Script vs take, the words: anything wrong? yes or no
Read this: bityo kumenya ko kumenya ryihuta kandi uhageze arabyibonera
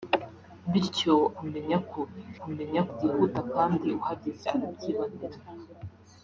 no